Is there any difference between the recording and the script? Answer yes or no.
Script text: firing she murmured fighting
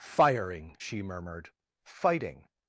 no